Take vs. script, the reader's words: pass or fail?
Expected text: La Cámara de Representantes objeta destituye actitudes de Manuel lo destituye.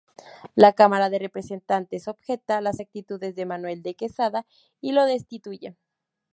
fail